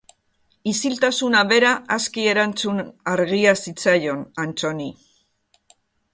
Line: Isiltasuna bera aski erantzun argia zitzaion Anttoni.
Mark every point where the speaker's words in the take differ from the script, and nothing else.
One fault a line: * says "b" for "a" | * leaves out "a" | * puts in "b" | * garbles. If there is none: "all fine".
all fine